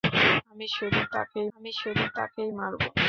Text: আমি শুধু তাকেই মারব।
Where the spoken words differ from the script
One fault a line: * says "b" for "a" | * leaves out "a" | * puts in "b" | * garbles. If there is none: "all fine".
* puts in "আমি শুধু তাকেই"